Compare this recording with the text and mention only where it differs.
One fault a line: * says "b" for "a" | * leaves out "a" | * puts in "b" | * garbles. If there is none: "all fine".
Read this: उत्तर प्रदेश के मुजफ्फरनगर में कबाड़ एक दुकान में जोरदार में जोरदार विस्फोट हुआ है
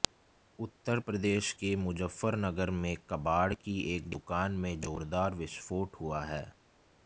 * puts in "की"
* leaves out "में जोरदार"